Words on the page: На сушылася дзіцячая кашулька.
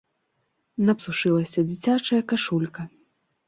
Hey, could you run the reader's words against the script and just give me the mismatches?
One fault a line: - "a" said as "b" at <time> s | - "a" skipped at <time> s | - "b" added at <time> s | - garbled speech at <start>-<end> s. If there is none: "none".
none